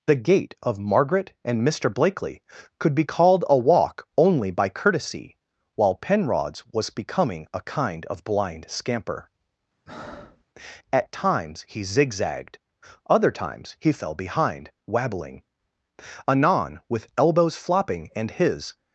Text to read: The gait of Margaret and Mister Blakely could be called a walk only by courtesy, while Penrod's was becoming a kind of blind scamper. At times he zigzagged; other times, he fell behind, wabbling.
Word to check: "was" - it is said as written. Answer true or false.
true